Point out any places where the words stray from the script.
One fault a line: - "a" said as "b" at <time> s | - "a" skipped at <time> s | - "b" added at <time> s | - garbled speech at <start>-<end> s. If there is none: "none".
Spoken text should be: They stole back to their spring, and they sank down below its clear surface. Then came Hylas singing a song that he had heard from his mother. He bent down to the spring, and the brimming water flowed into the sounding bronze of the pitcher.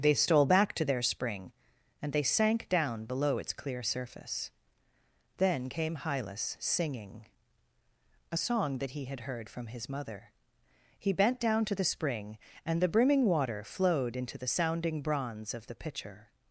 none